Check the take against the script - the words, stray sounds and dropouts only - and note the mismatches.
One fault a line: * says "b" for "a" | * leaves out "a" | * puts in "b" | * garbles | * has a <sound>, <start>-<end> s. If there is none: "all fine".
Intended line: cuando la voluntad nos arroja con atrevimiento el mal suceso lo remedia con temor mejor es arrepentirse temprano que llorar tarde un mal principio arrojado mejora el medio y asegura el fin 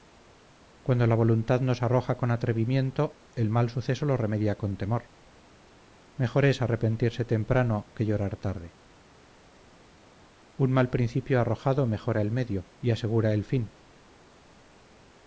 all fine